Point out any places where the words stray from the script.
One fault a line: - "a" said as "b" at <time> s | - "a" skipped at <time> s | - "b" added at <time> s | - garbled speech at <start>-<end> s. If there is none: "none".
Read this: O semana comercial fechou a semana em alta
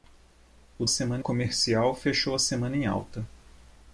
none